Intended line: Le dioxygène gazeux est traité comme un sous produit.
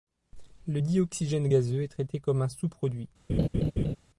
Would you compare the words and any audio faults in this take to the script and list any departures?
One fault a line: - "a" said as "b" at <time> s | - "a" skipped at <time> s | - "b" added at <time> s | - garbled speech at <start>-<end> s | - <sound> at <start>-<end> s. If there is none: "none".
- laugh at 3.3-4.0 s